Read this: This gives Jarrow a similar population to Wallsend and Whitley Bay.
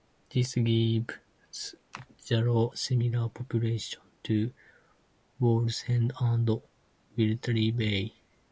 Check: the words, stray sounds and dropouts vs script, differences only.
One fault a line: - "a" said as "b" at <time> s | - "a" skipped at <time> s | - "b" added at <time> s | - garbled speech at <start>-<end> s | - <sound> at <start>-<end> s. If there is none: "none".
- "a" skipped at 2.7 s